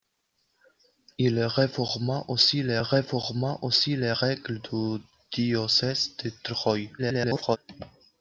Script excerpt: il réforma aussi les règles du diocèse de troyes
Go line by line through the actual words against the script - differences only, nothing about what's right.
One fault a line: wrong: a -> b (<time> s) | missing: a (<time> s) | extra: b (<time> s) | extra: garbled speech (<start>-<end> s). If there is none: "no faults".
extra: réforma aussi les (2.8 s)
extra: garbled speech (7.0-7.6 s)